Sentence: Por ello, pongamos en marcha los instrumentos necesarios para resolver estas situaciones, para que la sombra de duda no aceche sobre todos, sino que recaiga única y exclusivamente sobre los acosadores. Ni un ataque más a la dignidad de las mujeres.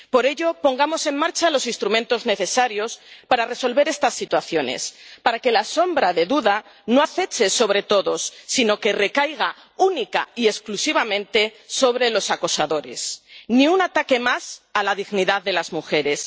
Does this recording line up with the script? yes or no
yes